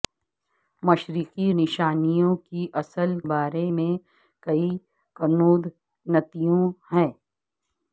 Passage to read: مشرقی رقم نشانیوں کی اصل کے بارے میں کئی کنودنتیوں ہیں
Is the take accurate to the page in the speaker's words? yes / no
no